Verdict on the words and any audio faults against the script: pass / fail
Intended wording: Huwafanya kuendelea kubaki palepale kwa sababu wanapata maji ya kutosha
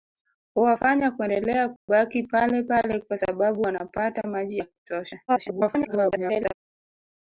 fail